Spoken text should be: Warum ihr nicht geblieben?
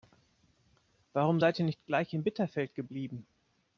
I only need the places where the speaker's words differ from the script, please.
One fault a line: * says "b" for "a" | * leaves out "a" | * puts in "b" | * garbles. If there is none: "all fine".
* puts in "seid"
* puts in "gleich in Bitterfeld"